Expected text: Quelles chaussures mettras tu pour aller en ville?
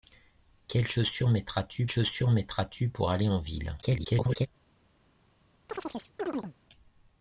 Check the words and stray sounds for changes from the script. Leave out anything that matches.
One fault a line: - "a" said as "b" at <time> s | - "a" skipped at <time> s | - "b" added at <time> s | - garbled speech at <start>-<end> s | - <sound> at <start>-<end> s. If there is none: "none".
- "chaussures mettras tu" added at 1.9 s
- garbled speech at 3.8-4.5 s
- chirp at 5.7-6.5 s